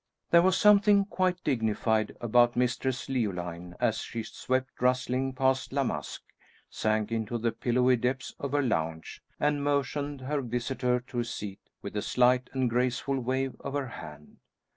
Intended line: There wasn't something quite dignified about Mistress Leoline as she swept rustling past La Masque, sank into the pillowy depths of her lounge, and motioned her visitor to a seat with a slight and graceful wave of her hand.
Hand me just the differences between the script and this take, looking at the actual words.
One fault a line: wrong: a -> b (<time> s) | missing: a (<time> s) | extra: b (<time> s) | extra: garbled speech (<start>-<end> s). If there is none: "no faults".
wrong: wasn't -> was (0.4 s)